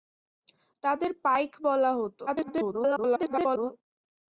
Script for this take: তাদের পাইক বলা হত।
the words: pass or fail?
fail